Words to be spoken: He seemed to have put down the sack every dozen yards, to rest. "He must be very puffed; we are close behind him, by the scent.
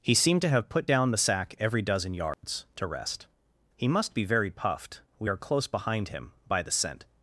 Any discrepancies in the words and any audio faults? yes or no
yes